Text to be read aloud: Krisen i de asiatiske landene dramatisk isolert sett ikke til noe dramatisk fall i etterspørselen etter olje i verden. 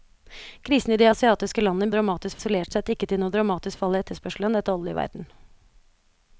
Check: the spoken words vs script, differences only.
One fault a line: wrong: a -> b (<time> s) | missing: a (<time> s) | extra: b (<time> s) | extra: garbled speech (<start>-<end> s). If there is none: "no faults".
no faults